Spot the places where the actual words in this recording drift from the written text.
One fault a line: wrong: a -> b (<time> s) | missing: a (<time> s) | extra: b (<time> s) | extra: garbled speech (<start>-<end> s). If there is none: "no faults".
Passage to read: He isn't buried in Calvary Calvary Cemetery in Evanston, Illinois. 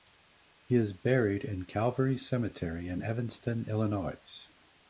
wrong: isn't -> is (0.7 s)
missing: Calvary (2.2 s)